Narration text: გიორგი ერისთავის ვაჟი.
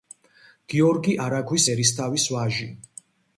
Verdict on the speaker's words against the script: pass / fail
fail